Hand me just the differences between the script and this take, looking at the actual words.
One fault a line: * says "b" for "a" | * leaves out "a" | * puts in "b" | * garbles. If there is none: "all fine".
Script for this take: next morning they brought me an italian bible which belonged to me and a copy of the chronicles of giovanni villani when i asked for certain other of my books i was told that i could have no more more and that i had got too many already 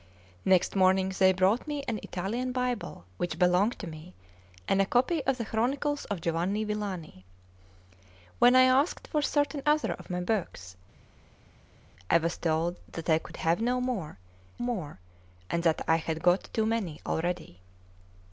all fine